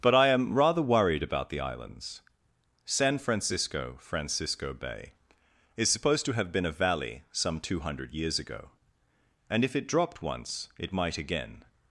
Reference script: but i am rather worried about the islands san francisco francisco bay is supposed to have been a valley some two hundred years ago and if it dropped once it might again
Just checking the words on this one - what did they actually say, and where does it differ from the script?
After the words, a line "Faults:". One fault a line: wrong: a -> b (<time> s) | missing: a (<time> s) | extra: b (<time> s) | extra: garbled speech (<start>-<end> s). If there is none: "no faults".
but i am rather worried about the islands san francisco francisco bay is supposed to have been a valley some two hundred years ago and if it dropped once it might again
Faults:
no faults